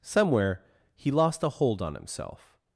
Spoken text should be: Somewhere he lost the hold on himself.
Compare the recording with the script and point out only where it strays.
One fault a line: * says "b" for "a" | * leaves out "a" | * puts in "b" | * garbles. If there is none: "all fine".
* says "a" for "the"